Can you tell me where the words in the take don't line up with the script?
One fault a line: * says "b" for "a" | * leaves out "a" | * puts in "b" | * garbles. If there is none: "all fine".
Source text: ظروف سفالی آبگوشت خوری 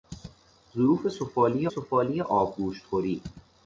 * puts in "سفالی"